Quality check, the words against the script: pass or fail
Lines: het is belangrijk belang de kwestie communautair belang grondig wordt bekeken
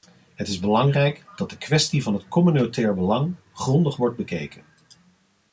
fail